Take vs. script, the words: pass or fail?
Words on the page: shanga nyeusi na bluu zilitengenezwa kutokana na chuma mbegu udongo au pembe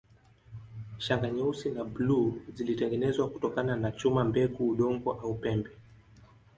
pass